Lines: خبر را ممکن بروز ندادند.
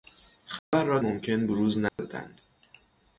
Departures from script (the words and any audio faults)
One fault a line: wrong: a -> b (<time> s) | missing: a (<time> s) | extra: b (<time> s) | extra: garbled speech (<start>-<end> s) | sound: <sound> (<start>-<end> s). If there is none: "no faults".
sound: dropout (0.6-0.7 s)
sound: dropout (1.9-2.0 s)